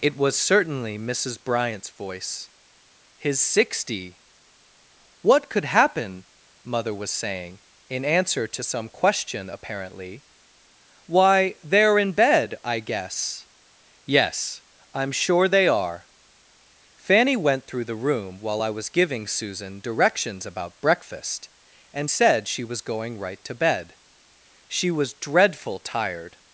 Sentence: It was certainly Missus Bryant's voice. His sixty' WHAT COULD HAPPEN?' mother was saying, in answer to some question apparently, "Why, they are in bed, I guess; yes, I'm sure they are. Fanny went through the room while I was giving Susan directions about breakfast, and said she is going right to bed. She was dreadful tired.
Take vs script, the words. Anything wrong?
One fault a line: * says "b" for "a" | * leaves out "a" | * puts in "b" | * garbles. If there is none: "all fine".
* says "was" for "is"